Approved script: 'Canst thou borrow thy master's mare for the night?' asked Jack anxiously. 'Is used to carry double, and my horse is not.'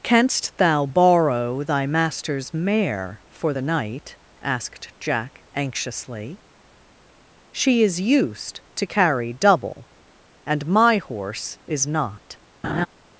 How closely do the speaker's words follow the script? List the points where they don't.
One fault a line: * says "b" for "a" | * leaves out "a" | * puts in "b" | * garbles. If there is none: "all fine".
* puts in "She"